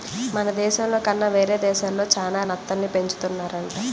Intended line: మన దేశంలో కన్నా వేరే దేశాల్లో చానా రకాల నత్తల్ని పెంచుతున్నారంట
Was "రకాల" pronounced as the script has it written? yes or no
no